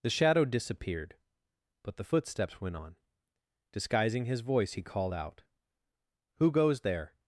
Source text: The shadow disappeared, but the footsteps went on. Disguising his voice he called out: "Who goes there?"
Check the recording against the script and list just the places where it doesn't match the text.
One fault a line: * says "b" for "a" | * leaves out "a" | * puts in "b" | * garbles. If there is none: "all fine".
all fine